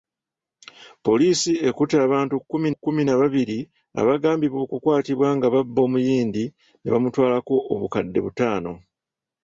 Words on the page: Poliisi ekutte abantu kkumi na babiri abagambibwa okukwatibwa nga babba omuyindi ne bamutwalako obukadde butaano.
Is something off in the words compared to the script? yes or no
yes